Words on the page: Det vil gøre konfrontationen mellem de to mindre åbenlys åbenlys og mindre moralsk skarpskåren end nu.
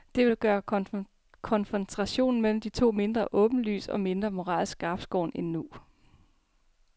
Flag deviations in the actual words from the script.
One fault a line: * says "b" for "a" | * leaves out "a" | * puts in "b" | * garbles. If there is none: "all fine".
* leaves out "åbenlys"